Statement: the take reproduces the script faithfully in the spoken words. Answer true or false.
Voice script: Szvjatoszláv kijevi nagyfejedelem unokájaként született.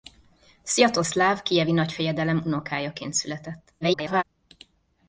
false